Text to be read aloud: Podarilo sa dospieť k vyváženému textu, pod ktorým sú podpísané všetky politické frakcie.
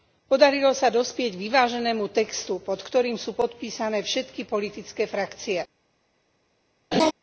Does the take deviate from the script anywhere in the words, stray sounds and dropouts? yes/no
yes